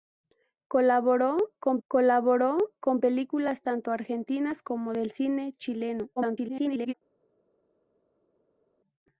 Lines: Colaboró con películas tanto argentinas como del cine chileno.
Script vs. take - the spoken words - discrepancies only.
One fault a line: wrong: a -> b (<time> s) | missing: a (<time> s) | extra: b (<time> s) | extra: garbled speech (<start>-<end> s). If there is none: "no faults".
extra: colaboró con (1.9 s)
extra: garbled speech (6.2-6.9 s)